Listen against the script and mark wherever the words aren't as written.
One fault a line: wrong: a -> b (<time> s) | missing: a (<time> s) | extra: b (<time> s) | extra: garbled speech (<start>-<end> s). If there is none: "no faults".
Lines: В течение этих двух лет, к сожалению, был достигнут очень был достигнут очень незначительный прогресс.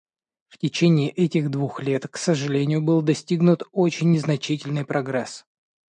missing: был достигнут очень (4.1 s)